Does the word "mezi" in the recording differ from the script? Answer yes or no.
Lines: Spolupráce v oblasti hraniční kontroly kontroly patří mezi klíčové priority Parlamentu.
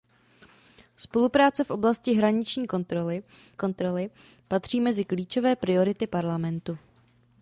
no